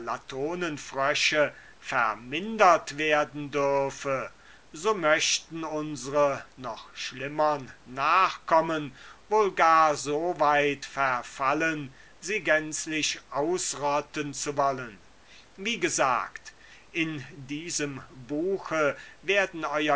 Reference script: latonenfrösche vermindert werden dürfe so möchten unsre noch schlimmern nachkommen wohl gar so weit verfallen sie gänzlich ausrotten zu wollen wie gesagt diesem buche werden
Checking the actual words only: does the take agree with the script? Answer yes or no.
no